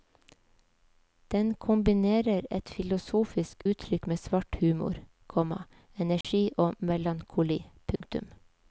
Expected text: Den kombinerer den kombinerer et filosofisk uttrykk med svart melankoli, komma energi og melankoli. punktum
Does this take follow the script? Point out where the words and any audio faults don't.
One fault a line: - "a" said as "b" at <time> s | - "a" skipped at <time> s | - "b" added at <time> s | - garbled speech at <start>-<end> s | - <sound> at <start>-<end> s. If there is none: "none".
- "den kombinerer" skipped at 2.4 s
- "melankoli" said as "humor" at 4.6 s
- dropout at 6.2-6.2 s
- dropout at 8.0-8.0 s